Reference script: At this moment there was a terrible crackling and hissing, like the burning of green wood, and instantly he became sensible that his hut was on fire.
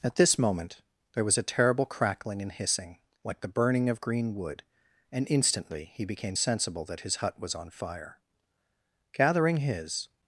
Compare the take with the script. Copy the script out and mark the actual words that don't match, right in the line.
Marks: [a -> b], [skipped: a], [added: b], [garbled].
At this moment there was a terrible crackling and hissing, like the burning of green wood, and instantly he became sensible that his hut was on fire. [added: Gathering his]